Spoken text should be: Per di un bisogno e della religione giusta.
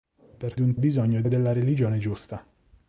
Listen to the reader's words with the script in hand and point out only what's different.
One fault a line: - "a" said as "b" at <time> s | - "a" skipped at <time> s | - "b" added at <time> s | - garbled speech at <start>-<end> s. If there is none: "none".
none